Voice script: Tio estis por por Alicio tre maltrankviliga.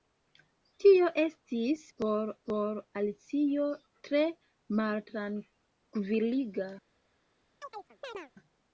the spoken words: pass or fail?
pass